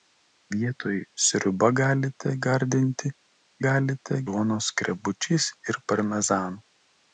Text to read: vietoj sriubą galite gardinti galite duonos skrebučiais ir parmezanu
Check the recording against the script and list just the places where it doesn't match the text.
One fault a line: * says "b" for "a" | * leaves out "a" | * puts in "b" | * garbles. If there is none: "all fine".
all fine